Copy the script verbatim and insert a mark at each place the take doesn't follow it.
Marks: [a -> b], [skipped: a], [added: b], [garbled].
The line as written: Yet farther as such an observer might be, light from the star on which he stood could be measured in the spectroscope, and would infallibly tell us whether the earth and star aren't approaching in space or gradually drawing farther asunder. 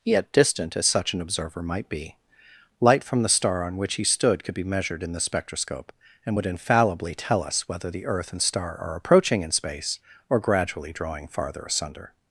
Yet [farther -> distant] as such an observer might be, light from the star on which he stood could be measured in the spectroscope, and would infallibly tell us whether the earth and star [aren't -> are] approaching in space or gradually drawing farther asunder.